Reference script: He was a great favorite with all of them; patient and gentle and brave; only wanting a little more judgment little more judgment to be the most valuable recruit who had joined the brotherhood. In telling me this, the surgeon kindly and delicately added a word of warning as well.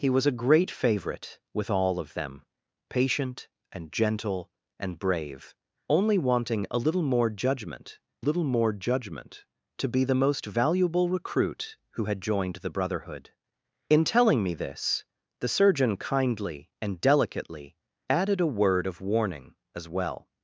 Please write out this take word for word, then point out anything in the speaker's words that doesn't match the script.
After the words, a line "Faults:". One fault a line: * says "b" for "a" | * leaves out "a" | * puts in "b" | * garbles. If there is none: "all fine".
He was a great favorite with all of them; patient and gentle and brave; only wanting a little more judgment little more judgment to be the most valuable recruit who had joined the brotherhood. In telling me this, the surgeon kindly and delicately added a word of warning as well.
Faults:
all fine